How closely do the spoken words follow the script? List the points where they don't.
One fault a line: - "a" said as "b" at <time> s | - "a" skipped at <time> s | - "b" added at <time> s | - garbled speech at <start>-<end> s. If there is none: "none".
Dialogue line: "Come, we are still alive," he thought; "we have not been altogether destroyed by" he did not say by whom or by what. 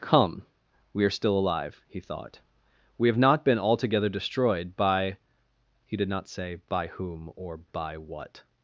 none